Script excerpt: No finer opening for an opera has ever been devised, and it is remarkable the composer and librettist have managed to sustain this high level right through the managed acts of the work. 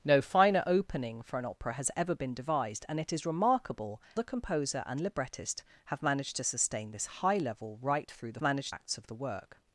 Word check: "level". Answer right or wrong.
right